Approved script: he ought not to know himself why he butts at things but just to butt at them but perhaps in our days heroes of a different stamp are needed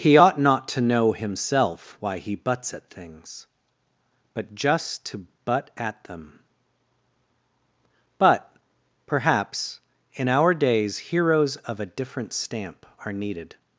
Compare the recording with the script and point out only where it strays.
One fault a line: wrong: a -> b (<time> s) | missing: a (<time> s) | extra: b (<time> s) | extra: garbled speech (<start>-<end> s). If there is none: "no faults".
no faults